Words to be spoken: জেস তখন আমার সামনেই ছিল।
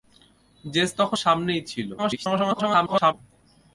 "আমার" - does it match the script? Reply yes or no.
no